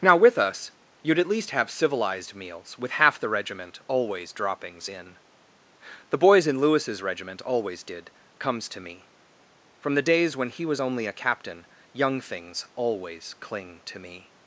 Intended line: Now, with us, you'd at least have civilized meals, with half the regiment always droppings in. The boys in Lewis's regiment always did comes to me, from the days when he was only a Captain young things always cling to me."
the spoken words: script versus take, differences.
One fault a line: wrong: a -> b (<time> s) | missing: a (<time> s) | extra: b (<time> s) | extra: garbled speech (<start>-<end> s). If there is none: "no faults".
no faults